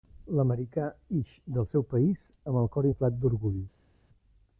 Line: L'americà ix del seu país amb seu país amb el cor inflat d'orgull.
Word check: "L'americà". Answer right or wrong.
right